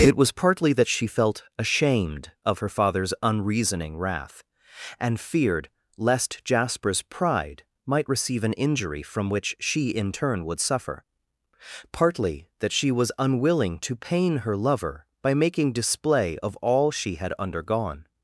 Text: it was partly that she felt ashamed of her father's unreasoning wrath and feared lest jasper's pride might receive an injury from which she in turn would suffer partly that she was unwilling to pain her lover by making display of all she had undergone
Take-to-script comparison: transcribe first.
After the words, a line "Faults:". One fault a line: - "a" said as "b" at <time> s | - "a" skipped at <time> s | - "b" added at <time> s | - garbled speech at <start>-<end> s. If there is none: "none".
it was partly that she felt ashamed of her father's unreasoning wrath and feared lest jasper's pride might receive an injury from which she in turn would suffer partly that she was unwilling to pain her lover by making display of all she had undergone
Faults:
none